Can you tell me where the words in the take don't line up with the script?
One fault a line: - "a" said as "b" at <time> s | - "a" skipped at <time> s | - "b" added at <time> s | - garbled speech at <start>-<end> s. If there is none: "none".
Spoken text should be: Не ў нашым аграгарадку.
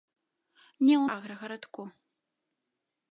- "нашым" skipped at 1.1 s